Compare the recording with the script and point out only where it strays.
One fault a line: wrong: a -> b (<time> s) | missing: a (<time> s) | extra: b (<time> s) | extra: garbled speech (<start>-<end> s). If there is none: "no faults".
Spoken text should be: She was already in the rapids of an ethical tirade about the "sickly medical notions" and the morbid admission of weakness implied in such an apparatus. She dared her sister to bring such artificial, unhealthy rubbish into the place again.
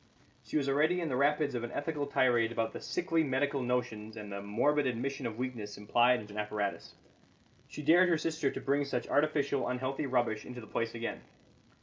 missing: such (6.3 s)